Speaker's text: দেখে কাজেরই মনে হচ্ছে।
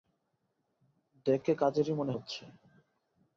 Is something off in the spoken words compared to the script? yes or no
no